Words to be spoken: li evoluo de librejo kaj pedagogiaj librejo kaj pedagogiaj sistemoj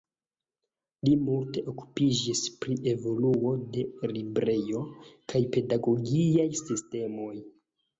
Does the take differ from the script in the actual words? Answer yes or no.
yes